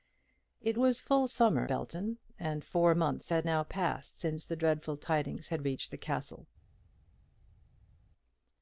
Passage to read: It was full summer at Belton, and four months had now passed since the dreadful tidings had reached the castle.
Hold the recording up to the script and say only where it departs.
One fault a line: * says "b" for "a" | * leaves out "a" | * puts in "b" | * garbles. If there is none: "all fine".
* leaves out "at"